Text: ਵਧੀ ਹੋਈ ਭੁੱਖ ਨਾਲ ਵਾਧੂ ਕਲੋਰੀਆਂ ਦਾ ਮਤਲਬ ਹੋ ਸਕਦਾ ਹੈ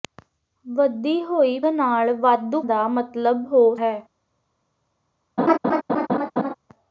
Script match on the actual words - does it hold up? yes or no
no